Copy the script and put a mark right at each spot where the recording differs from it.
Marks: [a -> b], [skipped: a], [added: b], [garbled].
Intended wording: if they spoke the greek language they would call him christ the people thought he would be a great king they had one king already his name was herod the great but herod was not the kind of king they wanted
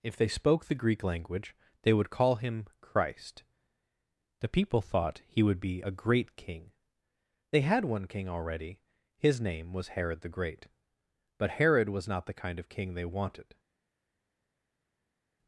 if they spoke the greek language they would call him christ the people thought he would be a great king they had one king already his name was herod the great but herod was not the kind of king they wanted